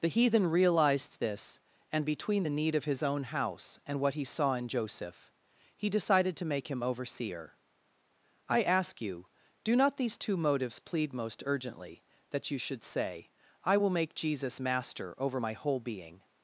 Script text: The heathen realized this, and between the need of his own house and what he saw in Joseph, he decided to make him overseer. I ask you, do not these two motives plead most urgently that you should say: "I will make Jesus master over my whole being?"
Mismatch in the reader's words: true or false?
false